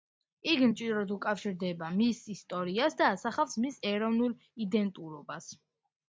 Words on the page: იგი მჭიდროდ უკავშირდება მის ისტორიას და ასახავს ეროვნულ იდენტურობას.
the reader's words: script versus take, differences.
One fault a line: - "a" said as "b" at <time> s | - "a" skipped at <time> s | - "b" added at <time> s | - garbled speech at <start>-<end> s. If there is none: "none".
- "მის" added at 3.6 s